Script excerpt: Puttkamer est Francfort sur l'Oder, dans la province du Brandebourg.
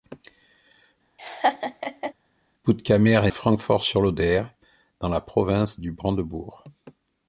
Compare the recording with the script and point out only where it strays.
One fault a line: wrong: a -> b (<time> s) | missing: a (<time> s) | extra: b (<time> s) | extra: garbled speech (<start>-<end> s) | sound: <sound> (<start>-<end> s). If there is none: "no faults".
sound: laugh (1.2-2.1 s)